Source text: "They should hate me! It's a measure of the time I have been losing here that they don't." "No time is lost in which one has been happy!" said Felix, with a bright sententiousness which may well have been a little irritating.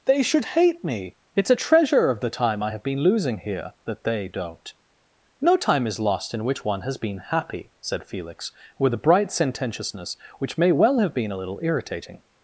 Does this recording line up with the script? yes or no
no